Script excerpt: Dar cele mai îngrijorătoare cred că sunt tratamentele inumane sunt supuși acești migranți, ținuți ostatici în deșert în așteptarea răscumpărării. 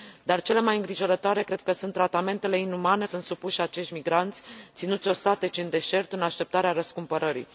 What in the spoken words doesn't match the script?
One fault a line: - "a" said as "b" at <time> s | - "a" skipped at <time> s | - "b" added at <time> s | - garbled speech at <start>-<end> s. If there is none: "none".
none